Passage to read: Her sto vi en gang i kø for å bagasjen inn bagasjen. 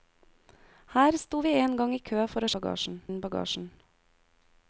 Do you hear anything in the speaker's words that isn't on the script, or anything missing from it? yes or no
no